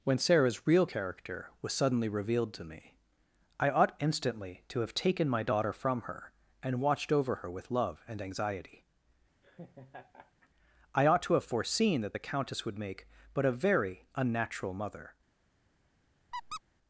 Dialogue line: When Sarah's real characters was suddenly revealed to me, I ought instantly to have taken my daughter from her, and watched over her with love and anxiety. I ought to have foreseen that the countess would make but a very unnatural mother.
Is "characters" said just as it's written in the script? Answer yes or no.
no